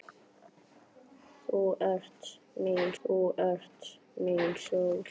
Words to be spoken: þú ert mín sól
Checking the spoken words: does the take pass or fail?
fail